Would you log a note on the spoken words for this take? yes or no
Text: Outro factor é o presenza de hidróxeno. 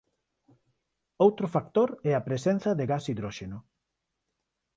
yes